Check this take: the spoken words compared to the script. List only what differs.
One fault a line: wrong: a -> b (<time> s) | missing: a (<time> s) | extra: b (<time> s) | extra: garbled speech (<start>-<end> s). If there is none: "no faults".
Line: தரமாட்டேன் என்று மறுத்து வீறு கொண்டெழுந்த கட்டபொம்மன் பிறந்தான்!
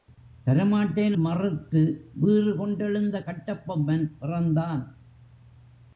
missing: என்று (1.1 s)